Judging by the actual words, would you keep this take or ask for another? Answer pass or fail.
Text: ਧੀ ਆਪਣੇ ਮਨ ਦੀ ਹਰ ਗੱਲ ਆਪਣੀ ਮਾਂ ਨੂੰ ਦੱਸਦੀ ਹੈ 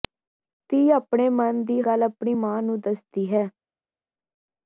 fail